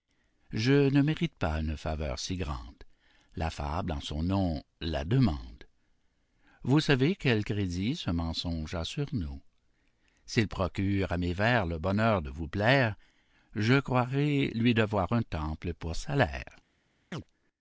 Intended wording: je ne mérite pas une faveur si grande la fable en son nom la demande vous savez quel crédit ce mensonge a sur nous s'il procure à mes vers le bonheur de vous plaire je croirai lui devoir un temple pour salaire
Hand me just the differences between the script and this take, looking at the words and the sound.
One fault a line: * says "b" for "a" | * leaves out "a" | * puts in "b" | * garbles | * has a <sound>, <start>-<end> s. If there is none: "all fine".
* has a chirp, 17.1-17.2 s